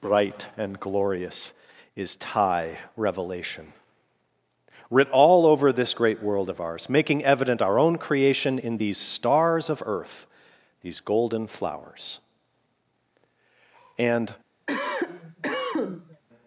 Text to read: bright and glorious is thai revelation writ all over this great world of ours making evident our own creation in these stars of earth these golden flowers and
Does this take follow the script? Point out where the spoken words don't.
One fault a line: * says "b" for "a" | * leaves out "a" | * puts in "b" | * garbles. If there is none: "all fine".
all fine